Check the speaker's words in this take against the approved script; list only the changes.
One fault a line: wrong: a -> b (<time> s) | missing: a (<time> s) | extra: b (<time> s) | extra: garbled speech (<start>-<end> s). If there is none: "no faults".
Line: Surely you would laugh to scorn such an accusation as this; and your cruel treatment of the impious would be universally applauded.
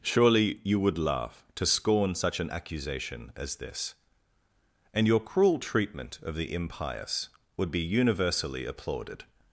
no faults